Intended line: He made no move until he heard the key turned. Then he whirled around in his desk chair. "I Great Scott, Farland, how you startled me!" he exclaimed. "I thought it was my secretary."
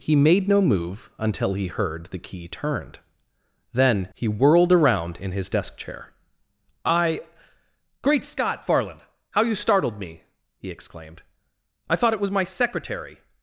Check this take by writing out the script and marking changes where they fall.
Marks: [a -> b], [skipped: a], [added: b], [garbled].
He made no move until he heard the key turned. Then he whirled around in his desk chair. "I Great Scott, Farland, how you startled me!" he exclaimed. "I thought it was my secretary."